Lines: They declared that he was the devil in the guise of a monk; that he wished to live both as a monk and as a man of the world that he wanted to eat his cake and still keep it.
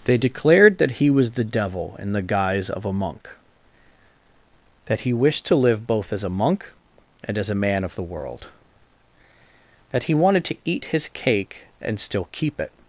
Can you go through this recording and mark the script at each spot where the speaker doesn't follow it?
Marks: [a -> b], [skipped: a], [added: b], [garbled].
They declared that he was the devil in the guise of a monk; that he wished to live both as a monk and as a man of the world that he wanted to eat his cake and still keep it.